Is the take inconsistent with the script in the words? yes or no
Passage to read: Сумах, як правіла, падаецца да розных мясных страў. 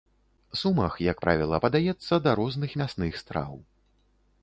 no